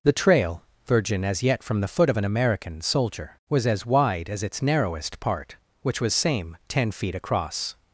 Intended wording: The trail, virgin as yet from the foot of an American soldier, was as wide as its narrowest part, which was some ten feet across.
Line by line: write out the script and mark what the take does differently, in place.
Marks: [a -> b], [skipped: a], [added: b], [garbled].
The trail, virgin as yet from the foot of an American soldier, was as wide as its narrowest part, which was [some -> same] ten feet across.